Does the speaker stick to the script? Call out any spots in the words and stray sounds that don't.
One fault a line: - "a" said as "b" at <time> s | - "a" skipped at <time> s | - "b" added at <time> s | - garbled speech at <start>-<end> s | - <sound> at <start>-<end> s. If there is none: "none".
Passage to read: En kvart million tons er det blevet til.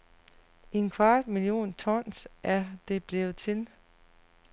none